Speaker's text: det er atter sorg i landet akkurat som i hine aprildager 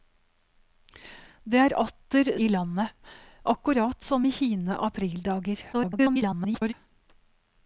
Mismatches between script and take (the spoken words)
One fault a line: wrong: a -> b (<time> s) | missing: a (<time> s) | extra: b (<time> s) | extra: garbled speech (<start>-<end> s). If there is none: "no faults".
missing: sorg (2.3 s)
extra: garbled speech (5.7-6.7 s)